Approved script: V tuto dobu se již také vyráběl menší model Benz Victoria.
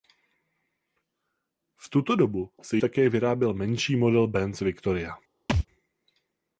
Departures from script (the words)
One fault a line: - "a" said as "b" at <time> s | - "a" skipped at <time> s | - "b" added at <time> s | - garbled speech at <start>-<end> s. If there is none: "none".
- "již" skipped at 2.8 s